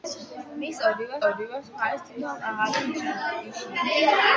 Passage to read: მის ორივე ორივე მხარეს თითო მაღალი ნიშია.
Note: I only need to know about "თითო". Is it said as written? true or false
true